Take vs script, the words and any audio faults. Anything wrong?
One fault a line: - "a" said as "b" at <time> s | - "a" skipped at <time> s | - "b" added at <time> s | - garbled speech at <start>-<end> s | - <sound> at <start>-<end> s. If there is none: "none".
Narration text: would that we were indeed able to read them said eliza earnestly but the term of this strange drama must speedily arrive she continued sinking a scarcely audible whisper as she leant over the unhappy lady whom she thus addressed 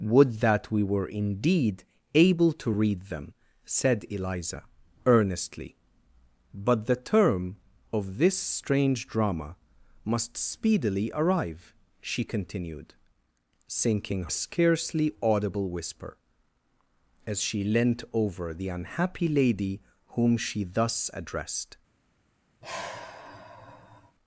- sigh at 22.6-24.2 s